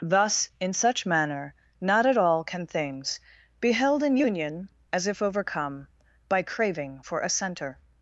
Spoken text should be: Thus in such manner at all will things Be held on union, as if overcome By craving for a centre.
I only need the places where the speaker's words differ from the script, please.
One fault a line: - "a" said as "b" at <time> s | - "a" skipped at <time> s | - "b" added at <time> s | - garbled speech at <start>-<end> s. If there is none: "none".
- "not" added at 1.8 s
- "will" said as "can" at 2.4 s
- "on" said as "in" at 4.0 s